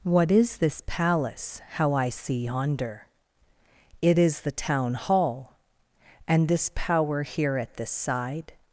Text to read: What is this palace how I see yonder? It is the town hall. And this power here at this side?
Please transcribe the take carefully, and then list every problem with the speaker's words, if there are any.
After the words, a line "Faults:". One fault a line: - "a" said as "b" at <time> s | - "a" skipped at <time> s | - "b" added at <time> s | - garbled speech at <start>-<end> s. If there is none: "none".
What is this palace how I see yonder? It is the town hall. And this power here at this side?
Faults:
none